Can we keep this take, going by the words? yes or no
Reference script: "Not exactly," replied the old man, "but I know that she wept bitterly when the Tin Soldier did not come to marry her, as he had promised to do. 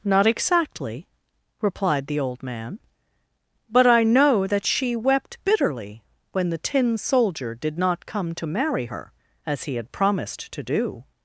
yes